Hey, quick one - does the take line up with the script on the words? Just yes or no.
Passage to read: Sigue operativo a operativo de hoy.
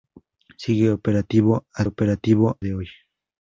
yes